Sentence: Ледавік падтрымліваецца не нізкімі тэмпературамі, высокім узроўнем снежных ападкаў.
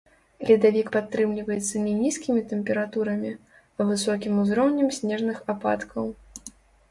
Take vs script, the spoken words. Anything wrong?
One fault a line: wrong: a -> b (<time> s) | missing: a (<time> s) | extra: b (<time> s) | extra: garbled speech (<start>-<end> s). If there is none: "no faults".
extra: а (3.8 s)